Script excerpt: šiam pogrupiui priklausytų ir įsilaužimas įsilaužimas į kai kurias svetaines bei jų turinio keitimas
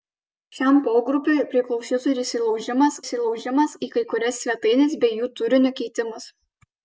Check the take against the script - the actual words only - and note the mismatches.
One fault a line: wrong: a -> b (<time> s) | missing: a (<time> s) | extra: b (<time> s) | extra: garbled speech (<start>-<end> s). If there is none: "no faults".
no faults